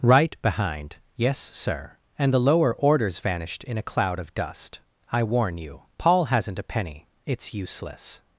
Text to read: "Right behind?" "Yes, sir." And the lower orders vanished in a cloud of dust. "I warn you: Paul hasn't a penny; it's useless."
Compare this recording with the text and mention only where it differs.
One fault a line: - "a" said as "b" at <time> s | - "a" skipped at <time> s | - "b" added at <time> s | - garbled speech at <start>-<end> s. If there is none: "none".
none